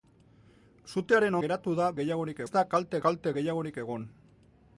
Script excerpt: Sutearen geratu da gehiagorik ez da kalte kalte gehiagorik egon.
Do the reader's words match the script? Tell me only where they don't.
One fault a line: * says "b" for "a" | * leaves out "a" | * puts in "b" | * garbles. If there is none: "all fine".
all fine